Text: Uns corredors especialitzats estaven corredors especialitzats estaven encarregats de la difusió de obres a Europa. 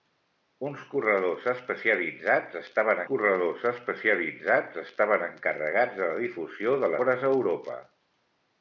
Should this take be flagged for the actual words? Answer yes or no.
no